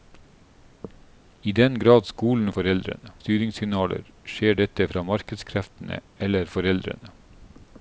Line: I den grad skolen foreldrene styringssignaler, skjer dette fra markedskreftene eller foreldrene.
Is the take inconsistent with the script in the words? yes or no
no